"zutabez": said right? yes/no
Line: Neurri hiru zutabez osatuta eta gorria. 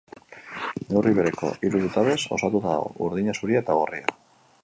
yes